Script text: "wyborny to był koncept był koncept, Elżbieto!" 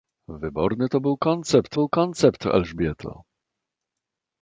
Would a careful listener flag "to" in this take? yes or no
no